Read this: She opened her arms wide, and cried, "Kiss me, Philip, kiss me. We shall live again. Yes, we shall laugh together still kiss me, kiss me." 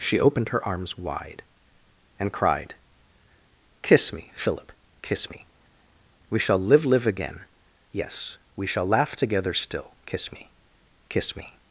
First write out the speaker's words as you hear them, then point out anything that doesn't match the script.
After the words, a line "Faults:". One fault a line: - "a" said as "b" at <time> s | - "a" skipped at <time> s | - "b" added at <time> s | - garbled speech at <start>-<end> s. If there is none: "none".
She opened her arms wide, and cried, "Kiss me, Philip, kiss me. We shall live live again. Yes, we shall laugh together still kiss me, kiss me."
Faults:
- "live" added at 6.9 s